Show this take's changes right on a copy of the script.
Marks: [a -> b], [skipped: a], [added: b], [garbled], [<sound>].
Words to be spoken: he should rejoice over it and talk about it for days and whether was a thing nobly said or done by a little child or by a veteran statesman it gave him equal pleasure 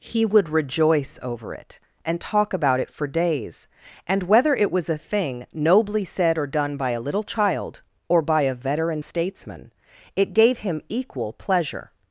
he [should -> would] rejoice over it and talk about it for days and whether [added: it] was a thing nobly said or done by a little child or by a veteran statesman it gave him equal pleasure